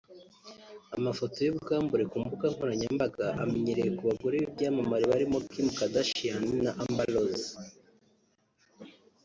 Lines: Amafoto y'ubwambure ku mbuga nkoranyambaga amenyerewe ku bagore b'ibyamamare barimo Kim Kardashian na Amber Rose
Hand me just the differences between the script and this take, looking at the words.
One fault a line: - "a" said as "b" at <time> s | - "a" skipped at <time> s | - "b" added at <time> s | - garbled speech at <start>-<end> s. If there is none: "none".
none